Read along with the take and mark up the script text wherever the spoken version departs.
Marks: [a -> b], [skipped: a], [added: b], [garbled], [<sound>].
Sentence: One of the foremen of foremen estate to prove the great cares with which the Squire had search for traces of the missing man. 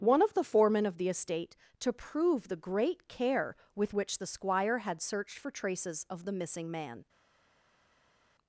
One of the foremen of [foremen -> the] estate to prove the great [cares -> care] with which the Squire had [search -> searched] for traces of the missing man.